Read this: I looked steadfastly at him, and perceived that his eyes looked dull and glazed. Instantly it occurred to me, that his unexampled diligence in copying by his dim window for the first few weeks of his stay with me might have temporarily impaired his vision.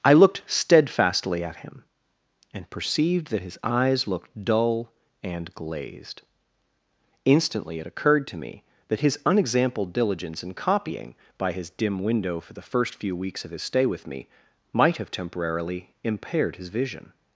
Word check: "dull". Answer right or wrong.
right